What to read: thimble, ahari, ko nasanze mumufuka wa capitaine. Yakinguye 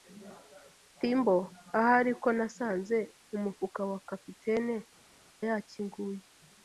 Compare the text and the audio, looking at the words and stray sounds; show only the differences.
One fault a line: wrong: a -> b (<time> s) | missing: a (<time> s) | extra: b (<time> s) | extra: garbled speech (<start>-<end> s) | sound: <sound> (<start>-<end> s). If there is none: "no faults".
no faults